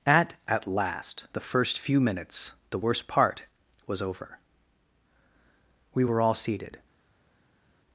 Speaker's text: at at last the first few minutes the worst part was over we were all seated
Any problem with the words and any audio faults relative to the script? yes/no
no